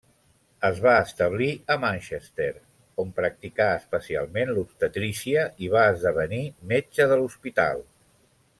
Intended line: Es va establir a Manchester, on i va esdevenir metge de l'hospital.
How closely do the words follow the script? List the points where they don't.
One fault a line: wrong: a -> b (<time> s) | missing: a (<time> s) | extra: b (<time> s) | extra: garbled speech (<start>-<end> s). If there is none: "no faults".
extra: practicà especialment l'obstetrícia (3.2 s)